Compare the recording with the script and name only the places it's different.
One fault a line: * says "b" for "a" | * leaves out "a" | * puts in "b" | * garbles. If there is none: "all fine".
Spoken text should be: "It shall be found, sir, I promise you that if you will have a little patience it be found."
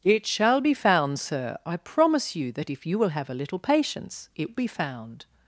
all fine